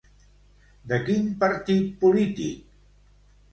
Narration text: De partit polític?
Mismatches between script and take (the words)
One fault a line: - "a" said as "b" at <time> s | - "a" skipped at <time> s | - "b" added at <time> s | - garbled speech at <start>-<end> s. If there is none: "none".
- "quin" added at 1.1 s